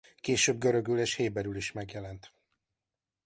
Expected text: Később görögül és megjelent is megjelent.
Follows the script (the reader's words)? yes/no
no